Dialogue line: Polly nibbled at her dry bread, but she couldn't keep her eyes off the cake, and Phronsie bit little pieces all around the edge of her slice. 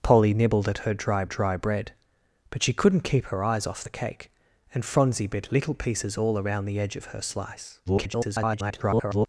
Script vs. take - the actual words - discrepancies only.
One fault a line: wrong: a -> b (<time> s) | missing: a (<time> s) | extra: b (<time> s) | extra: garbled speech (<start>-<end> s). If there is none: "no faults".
extra: dry (1.2 s)
extra: garbled speech (7.9-9.3 s)